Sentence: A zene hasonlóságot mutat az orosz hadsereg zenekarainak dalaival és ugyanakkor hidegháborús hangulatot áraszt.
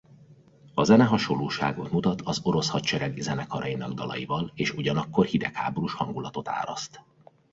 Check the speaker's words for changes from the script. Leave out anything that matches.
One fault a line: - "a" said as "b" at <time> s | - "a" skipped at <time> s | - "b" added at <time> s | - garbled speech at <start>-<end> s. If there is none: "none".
none